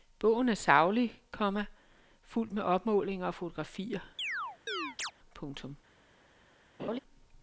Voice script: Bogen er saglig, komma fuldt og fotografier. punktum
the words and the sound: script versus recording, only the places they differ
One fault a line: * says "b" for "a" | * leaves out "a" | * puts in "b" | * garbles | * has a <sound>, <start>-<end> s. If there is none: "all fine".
* puts in "med opmålinger"
* has a chirp, 4.2-5.1 s
* has a laugh, 6.8-7.0 s